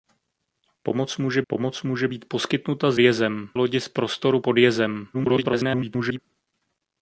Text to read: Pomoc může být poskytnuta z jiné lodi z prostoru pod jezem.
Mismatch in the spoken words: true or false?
true